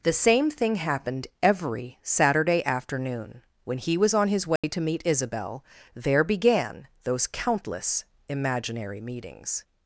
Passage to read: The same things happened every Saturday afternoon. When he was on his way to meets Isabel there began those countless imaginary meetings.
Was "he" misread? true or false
false